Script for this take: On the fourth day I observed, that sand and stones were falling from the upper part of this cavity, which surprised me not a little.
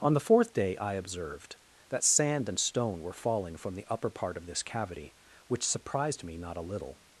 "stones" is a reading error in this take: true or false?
true